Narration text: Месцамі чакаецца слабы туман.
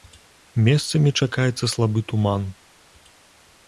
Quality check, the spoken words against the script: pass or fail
pass